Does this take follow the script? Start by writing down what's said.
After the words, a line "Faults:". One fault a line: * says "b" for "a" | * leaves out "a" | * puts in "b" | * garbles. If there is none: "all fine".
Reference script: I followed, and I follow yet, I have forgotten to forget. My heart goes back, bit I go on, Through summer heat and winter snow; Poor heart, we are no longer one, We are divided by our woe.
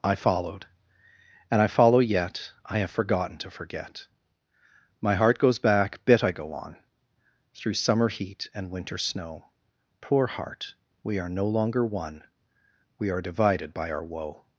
I followed, and I follow yet, I have forgotten to forget. My heart goes back, bit I go on, Through summer heat and winter snow; Poor heart, we are no longer one, We are divided by our woe.
Faults:
all fine